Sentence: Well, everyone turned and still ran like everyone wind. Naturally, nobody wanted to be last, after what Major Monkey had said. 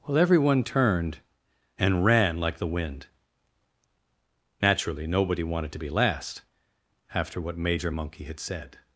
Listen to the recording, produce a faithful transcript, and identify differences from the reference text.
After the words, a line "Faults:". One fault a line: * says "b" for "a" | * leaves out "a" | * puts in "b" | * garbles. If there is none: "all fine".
Well, everyone turned and ran like the wind. Naturally, nobody wanted to be last, after what Major Monkey had said.
Faults:
* leaves out "still"
* says "the" for "everyone"